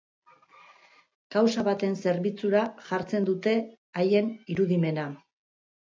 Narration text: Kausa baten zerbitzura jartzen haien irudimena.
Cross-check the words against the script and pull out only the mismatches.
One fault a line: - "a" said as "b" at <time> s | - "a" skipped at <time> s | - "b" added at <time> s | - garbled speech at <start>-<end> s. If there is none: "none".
- "dute" added at 3.3 s